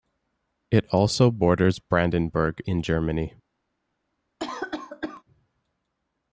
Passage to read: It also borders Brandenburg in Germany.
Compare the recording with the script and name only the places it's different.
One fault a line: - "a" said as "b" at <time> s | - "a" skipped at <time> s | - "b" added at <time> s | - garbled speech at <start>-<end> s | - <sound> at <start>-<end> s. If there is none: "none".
- cough at 4.4-5.2 s